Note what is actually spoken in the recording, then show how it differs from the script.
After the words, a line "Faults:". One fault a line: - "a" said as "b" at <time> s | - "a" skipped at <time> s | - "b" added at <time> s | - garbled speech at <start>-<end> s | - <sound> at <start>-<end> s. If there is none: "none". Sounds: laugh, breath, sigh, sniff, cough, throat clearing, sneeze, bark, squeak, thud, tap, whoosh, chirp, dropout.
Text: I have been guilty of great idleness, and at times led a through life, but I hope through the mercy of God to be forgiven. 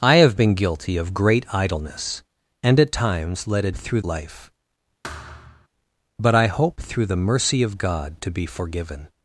I have been guilty of great idleness, and at times led a through life, but I hope through the mercy of God to be forgiven.
Faults:
- thud at 5.0-5.7 s